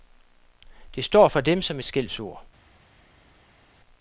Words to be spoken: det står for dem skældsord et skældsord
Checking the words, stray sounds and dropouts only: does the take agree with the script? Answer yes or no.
no